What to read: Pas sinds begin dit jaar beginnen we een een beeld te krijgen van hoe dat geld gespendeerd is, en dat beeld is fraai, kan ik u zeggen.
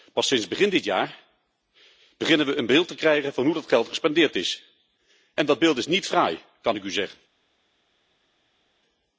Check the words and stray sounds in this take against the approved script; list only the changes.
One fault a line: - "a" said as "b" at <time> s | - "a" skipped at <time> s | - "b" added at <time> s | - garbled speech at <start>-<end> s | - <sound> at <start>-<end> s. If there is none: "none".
- "een" skipped at 2.6 s
- "niet" added at 5.9 s